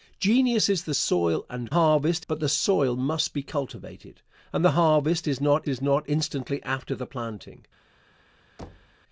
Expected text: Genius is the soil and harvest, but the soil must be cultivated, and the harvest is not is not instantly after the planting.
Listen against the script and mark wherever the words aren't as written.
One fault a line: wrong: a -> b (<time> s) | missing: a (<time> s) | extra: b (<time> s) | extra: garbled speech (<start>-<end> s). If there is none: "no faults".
no faults